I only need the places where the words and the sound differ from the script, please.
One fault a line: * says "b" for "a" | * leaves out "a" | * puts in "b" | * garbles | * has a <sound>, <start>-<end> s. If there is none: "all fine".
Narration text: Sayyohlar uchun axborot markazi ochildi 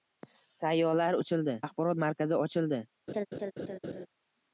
* says "ochildi" for "uchun"
* has a laugh, 3.1-4.1 s